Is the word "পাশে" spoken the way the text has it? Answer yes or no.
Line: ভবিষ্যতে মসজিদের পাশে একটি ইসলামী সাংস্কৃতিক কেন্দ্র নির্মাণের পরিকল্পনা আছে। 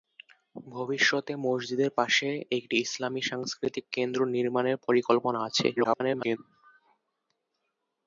yes